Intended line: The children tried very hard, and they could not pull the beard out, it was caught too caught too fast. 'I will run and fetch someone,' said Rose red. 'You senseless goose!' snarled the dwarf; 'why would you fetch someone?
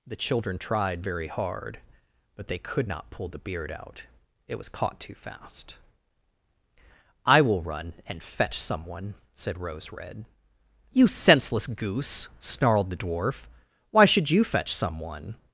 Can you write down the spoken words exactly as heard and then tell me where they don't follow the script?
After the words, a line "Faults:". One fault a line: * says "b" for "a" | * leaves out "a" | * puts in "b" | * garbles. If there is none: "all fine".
The children tried very hard, but they could not pull the beard out, it was caught too fast. 'I will run and fetch someone,' said Rose red. 'You senseless goose!' snarled the dwarf; 'why should you fetch someone?
Faults:
* says "but" for "and"
* leaves out "caught too"
* says "should" for "would"